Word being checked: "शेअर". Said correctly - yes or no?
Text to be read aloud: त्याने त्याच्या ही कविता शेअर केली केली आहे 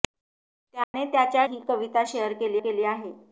yes